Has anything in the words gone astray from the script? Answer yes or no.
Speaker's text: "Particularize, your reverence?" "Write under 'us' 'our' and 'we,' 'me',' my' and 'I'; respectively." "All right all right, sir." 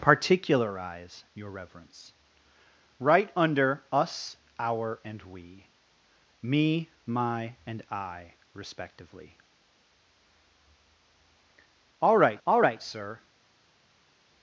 no